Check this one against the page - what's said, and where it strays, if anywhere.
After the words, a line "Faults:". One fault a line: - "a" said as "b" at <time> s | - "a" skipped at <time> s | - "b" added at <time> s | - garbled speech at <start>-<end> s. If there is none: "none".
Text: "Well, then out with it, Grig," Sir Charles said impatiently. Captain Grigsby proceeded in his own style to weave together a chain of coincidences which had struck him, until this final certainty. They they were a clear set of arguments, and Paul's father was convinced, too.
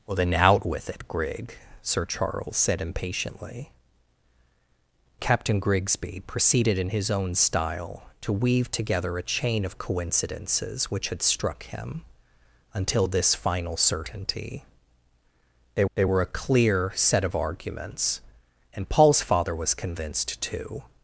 "Well, then out with it, Grig," Sir Charles said impatiently. Captain Grigsby proceeded in his own style to weave together a chain of coincidences which had struck him, until this final certainty. They they were a clear set of arguments, and Paul's father was convinced, too.
Faults:
none